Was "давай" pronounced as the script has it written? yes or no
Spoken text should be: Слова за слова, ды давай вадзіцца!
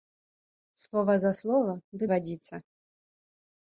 no